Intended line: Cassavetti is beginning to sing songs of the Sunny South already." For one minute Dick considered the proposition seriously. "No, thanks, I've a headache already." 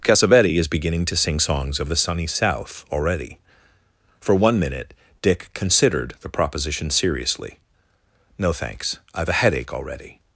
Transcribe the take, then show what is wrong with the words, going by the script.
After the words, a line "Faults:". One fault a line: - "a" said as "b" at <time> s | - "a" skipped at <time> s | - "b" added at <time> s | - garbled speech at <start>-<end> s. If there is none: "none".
Cassavetti is beginning to sing songs of the Sunny South already." For one minute Dick considered the proposition seriously. "No, thanks, I've a headache already."
Faults:
none